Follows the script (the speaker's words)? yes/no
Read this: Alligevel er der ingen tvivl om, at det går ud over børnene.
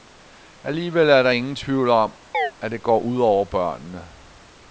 yes